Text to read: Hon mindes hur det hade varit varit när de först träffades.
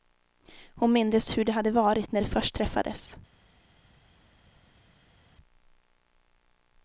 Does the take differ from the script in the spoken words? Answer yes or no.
yes